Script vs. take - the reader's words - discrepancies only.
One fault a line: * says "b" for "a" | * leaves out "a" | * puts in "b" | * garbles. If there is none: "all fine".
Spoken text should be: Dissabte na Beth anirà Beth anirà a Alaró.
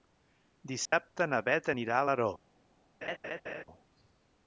* leaves out "Beth anirà"